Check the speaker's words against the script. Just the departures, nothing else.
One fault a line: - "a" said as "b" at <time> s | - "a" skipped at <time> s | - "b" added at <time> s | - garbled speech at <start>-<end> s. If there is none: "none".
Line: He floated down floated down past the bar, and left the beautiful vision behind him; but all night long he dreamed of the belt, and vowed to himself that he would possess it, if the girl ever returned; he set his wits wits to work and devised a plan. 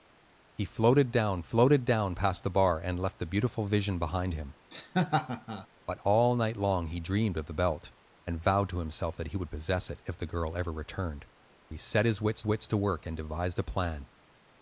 none